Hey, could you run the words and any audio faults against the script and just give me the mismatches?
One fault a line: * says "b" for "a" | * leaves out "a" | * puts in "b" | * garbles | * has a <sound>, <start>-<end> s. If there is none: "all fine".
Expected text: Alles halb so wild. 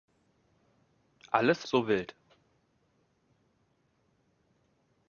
* leaves out "halb"